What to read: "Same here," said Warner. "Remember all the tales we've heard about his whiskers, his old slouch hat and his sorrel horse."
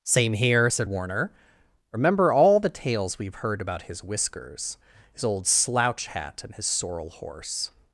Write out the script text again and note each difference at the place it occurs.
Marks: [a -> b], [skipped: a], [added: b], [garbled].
"Same here," said Warner. "Remember all the tales we've heard about his whiskers, his old slouch hat and his sorrel horse."